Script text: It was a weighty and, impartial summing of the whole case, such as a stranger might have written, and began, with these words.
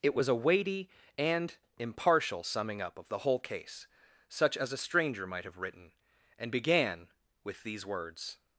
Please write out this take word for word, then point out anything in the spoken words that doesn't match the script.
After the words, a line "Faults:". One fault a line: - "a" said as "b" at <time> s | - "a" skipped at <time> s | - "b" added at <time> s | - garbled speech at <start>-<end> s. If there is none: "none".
It was a weighty and, impartial summing up of the whole case, such as a stranger might have written, and began, with these words.
Faults:
- "up" added at 2.8 s